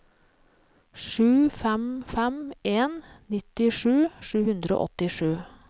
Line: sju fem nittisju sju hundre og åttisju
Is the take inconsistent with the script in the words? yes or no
yes